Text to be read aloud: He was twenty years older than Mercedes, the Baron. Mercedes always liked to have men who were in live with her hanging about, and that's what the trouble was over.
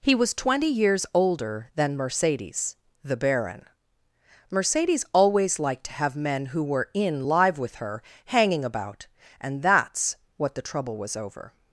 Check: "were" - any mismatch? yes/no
no